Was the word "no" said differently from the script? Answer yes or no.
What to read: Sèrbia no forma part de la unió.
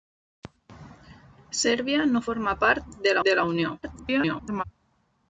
no